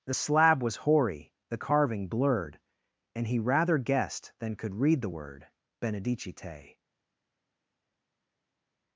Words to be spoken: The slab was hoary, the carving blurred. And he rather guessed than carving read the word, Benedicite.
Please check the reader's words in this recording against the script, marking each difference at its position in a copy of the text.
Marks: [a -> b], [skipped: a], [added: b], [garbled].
The slab was hoary, the carving blurred. And he rather guessed than [carving -> could] read the word, Benedicite.